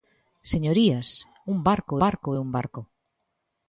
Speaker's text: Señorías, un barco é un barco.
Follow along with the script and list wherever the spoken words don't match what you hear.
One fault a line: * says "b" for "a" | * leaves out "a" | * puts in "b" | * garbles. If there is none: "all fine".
* puts in "barco"